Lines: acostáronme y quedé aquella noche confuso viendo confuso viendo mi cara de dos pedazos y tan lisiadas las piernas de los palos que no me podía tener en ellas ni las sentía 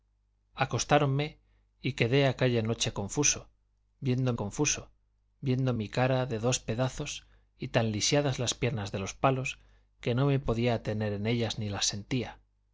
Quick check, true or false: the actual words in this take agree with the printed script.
true